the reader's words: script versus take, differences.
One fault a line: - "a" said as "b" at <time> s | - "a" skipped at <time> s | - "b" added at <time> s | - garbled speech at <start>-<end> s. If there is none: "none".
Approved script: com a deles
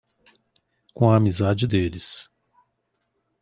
- "amizade" added at 1.2 s